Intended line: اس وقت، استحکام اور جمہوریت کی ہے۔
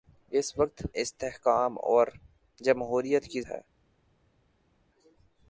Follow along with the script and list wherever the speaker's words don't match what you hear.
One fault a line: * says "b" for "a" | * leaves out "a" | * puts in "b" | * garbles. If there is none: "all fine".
all fine